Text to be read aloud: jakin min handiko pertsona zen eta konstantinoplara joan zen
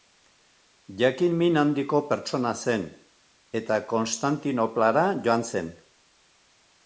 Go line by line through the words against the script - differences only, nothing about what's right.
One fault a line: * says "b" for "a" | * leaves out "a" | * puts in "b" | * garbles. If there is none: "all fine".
all fine